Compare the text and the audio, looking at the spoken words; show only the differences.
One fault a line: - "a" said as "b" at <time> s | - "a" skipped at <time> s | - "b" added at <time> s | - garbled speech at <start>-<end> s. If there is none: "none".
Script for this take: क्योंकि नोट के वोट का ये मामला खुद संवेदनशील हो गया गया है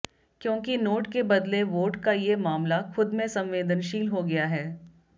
- "बदले" added at 1.2 s
- "में" added at 3.1 s
- "गया" skipped at 4.5 s